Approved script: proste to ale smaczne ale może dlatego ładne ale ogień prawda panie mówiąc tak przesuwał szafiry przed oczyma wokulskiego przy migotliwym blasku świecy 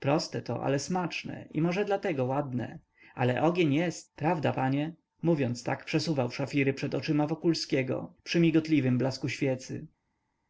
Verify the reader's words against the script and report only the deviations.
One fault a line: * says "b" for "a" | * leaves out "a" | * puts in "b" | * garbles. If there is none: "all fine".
* says "i" for "ale"
* puts in "jest"